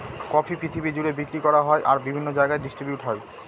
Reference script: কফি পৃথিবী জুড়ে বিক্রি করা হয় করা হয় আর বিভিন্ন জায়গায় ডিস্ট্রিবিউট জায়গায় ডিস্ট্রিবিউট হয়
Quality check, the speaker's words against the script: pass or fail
fail